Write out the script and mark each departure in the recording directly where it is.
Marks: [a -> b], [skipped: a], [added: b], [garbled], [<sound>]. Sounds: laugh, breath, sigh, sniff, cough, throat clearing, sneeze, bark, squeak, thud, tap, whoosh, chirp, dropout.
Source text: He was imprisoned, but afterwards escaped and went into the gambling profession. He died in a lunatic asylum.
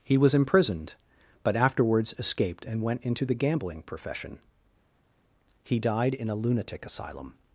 He was imprisoned, but afterwards escaped and went into the gambling profession. He died in a lunatic asylum.